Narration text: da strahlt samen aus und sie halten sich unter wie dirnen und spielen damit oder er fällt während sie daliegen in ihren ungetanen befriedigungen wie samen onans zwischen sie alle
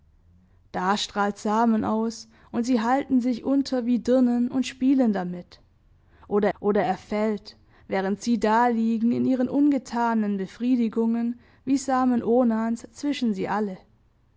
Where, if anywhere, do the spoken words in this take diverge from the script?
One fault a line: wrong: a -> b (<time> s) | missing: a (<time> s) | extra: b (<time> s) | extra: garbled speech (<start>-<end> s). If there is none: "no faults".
extra: oder (6.6 s)